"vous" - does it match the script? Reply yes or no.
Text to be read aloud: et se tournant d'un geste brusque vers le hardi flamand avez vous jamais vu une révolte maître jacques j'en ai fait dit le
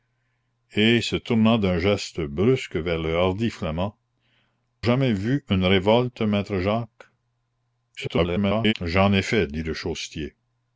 no